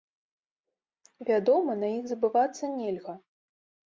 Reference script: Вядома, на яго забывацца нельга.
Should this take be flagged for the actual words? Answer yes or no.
yes